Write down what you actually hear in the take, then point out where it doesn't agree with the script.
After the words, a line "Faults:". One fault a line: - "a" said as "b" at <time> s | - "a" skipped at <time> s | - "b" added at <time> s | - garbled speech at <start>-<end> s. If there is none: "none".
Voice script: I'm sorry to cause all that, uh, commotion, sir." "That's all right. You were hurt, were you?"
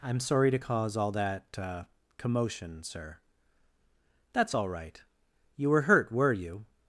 I'm sorry to cause all that, uh, commotion, sir." "That's all right. You were hurt, were you?"
Faults:
none